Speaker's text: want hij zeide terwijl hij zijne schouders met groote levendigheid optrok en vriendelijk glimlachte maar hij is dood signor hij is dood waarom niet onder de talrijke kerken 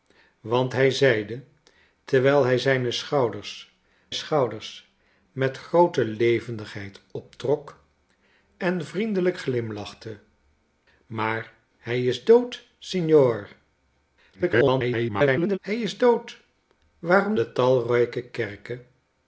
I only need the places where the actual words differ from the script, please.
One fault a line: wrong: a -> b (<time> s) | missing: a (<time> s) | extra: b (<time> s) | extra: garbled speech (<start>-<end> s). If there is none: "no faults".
extra: schouders (4.1 s)
extra: garbled speech (14.3-15.6 s)
missing: niet onder (17.3 s)